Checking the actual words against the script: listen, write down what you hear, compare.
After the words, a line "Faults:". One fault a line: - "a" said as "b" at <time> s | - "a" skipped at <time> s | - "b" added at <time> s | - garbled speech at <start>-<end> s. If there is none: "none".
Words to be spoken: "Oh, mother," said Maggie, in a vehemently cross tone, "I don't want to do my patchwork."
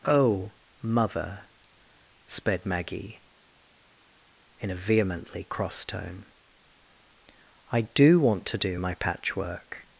"Oh, mother," sped Maggie, in a vehemently cross tone, "I do want to do my patchwork."
Faults:
- "said" said as "sped" at 2.3 s
- "don't" said as "do" at 7.8 s